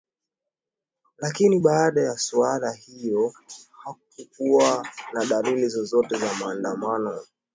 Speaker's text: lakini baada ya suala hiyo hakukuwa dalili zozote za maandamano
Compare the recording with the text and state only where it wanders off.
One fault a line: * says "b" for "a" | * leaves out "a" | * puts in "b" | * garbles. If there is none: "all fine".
* puts in "na"